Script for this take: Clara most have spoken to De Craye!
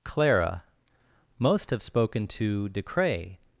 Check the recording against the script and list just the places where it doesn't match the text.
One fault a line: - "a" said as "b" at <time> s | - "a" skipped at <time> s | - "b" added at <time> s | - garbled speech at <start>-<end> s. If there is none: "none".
none